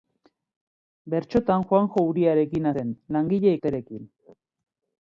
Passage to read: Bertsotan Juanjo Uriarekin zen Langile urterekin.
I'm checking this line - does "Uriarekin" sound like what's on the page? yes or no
yes